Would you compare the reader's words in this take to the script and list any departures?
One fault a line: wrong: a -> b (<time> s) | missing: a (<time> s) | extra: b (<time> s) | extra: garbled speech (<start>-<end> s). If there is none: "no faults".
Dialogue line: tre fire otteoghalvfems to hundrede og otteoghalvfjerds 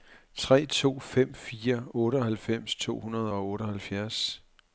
extra: to fem (0.7 s)